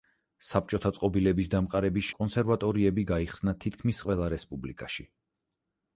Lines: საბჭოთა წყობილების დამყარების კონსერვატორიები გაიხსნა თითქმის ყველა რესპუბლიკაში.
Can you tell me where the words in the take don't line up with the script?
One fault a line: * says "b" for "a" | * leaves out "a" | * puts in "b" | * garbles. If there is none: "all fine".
all fine